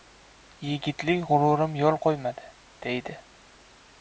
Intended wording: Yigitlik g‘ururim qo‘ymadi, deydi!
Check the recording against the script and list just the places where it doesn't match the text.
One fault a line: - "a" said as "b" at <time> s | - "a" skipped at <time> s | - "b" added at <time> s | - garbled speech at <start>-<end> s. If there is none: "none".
- "yo‘l" added at 1.8 s